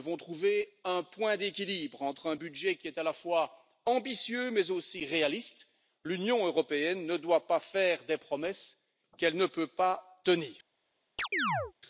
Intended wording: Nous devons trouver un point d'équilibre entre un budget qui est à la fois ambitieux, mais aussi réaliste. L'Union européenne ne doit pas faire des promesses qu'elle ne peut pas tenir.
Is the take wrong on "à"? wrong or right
right